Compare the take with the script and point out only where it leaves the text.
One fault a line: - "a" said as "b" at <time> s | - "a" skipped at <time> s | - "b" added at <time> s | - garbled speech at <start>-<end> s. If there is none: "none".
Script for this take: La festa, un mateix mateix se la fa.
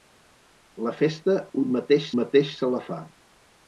none